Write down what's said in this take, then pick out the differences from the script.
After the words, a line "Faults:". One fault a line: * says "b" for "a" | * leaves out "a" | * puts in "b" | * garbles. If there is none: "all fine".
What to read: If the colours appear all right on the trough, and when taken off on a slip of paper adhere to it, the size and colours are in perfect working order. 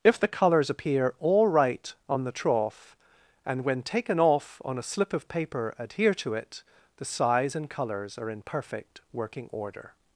If the colours appear all right on the trough, and when taken off on a slip of paper adhere to it, the size and colours are in perfect working order.
Faults:
all fine